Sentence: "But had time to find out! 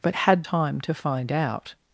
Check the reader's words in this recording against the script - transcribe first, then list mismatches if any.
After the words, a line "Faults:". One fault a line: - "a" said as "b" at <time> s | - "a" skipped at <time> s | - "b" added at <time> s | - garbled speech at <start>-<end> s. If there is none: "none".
"But had time to find out!
Faults:
none